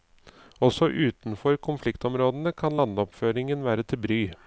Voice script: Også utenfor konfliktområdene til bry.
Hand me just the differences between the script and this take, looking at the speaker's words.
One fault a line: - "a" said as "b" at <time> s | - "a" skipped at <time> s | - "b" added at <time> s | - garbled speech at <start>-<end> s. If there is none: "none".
- "kan landoppføringen være" added at 2.6 s